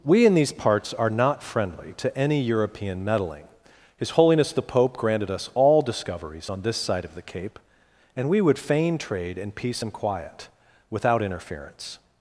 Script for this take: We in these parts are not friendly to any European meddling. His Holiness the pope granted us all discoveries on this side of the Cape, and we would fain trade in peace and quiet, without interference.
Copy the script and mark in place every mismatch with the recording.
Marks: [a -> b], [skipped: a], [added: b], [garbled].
We in these parts are not friendly to any European meddling. His Holiness the pope granted us all discoveries on this side of the Cape, and we would fain trade in peace and quiet, without interference.